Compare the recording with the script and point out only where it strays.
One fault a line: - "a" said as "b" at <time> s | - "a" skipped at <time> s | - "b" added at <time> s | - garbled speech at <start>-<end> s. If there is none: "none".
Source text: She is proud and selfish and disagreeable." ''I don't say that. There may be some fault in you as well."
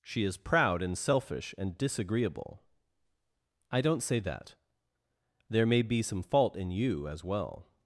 none